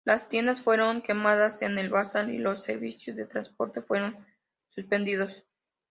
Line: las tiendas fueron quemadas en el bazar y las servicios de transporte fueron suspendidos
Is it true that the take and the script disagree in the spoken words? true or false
true